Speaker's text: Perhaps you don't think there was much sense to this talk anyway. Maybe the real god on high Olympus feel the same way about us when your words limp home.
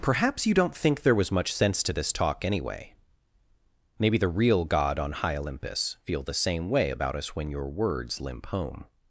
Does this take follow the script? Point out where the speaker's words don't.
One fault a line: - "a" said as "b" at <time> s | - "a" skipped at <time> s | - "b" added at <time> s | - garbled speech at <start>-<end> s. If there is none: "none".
none